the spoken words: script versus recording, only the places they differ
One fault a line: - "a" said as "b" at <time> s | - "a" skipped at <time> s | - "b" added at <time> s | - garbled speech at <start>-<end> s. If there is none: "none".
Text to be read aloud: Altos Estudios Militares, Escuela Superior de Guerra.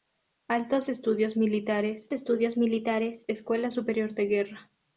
- "Estudios Militares" added at 2.1 s